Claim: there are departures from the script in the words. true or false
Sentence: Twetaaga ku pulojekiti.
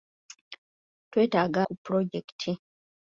false